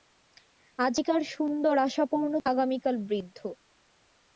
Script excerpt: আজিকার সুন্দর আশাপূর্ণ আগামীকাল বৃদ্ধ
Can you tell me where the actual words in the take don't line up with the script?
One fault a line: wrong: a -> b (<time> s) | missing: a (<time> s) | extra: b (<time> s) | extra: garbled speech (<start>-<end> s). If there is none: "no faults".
no faults